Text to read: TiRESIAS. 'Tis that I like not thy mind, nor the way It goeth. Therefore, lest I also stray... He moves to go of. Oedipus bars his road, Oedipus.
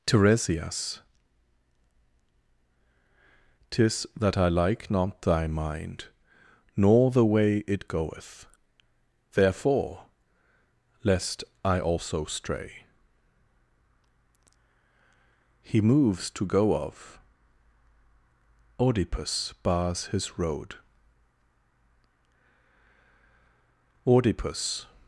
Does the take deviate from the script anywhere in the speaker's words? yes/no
no